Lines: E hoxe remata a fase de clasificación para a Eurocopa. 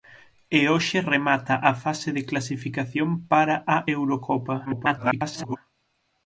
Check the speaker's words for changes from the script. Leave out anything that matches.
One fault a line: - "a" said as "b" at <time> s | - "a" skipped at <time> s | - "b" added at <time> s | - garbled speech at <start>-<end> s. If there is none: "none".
- garbled speech at 4.6-5.6 s